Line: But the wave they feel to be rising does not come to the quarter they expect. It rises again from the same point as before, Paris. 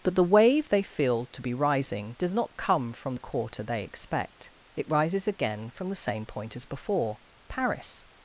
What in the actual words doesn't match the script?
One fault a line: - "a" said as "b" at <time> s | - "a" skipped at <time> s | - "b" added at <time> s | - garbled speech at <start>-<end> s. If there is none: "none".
- "to" said as "from" at 2.9 s